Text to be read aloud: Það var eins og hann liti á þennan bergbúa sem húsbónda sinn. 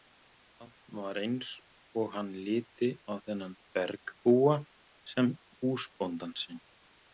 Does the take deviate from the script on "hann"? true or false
false